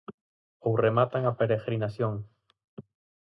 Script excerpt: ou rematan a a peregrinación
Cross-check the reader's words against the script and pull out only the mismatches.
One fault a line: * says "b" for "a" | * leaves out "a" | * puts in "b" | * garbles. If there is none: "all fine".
* leaves out "a"